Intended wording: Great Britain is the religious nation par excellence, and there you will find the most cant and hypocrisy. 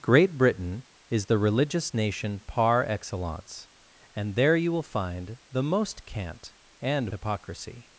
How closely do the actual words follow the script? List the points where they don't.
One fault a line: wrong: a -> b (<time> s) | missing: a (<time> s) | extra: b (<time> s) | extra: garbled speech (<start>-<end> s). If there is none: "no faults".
no faults